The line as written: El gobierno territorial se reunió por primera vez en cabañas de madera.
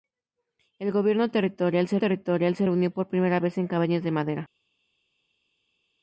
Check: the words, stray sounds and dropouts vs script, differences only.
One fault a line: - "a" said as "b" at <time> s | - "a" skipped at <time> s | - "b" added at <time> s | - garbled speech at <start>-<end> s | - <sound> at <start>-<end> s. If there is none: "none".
- "territorial se" added at 2.0 s